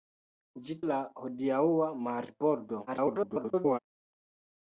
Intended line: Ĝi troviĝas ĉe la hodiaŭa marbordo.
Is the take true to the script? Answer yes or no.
no